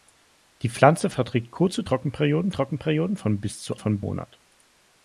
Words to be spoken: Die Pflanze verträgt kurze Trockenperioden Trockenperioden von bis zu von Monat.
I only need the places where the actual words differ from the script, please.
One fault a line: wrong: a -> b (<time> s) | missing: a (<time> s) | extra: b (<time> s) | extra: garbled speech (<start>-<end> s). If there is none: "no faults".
no faults